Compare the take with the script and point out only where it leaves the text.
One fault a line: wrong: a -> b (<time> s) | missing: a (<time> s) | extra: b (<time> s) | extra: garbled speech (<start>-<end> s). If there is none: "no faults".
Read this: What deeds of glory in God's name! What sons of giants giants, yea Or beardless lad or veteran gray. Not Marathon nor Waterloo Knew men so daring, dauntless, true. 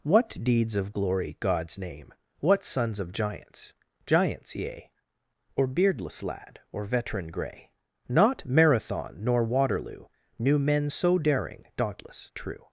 missing: in (1.4 s)